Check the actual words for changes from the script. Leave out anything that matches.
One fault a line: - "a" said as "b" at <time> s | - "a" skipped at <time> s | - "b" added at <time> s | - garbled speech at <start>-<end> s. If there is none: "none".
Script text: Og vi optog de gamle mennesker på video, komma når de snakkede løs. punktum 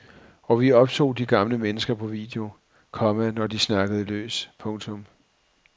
none